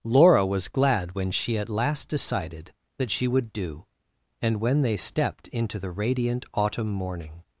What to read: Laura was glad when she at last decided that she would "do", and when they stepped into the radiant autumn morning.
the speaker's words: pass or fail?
pass